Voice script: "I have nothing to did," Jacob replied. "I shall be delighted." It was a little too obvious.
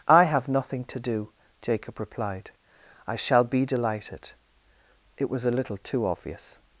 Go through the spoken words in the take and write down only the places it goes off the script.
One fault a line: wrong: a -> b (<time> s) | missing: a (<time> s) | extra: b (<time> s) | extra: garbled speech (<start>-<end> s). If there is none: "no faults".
wrong: did -> do (1.0 s)